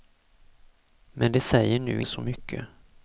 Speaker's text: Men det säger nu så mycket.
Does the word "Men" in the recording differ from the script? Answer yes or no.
no